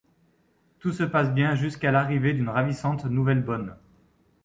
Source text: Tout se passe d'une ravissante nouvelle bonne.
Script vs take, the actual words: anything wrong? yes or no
yes